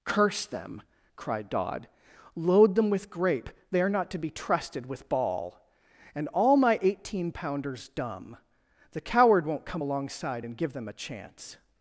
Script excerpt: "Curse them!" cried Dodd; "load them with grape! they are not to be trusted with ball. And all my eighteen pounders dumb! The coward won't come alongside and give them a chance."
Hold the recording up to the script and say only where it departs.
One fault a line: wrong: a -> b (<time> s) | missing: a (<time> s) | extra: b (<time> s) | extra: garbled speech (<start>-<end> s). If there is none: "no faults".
no faults